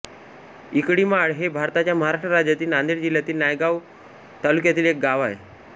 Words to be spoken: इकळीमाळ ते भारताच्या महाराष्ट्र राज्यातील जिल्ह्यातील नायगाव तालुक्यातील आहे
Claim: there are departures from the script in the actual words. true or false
true